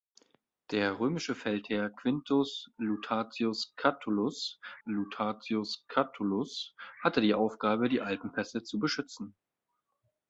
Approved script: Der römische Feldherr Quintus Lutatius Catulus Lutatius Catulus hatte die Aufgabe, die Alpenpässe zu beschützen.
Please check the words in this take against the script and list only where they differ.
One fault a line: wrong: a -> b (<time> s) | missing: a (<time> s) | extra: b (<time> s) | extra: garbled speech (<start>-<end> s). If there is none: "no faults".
no faults